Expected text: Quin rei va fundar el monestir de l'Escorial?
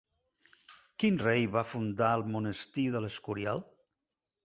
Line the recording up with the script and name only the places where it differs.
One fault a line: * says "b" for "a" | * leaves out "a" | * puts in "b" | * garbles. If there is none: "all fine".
all fine